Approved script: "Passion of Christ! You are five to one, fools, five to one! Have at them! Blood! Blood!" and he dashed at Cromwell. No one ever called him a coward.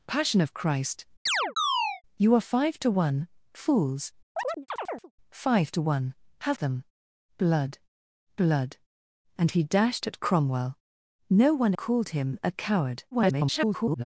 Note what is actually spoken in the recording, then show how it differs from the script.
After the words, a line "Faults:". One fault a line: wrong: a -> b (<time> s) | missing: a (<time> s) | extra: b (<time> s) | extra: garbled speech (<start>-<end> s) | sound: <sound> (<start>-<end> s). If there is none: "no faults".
"Passion of Christ! You are five to one, fools, five to one! Have them! Blood! Blood!" and he dashed at Cromwell. No one called him a coward. [garbled]
Faults:
sound: chirp (1.3-2.0 s)
sound: chirp (4.4-5.1 s)
missing: at (6.6 s)
missing: ever (11.7 s)
extra: garbled speech (13.1-14.0 s)